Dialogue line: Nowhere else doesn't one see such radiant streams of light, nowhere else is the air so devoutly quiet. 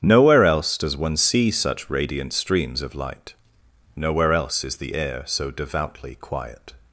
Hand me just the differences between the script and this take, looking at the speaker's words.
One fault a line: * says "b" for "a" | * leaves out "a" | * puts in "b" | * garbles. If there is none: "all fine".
* says "does" for "doesn't"